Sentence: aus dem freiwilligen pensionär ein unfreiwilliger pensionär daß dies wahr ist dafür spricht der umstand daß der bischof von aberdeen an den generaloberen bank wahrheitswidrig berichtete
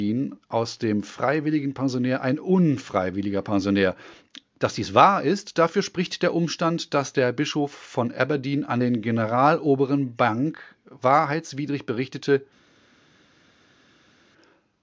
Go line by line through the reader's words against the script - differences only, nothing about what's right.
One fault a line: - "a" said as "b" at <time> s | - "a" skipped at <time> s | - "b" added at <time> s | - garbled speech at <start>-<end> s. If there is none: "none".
none